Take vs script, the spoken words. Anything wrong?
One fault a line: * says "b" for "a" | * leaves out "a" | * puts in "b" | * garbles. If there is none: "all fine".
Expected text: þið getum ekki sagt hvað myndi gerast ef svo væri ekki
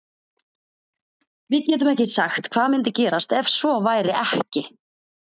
* says "við" for "þið"